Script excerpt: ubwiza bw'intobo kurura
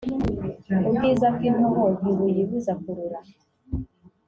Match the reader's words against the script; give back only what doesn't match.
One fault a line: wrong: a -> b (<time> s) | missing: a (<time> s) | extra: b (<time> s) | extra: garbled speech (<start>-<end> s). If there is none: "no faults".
extra: ntibuyibuza (2.0 s)